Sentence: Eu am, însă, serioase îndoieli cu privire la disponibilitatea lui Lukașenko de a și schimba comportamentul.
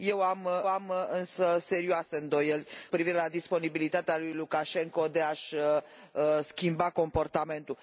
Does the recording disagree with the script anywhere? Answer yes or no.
yes